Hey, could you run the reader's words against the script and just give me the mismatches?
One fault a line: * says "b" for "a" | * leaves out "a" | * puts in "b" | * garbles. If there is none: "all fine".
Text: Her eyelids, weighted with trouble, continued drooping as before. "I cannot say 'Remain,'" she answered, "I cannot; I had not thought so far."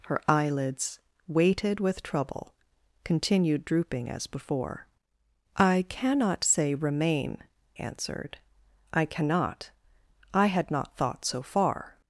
* leaves out "she"